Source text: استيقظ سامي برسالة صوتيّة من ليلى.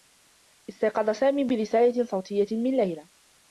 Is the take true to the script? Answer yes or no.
yes